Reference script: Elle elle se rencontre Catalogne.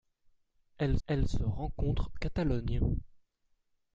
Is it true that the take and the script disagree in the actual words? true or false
false